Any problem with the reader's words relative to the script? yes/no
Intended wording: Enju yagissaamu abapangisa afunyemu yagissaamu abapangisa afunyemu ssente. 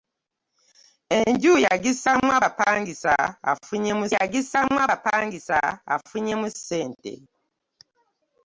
no